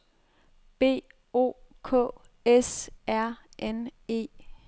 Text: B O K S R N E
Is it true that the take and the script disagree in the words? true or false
false